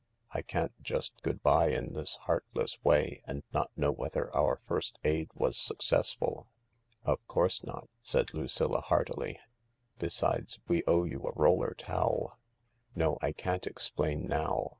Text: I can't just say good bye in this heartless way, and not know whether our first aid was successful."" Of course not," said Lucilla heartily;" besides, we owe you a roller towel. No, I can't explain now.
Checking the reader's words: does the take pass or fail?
fail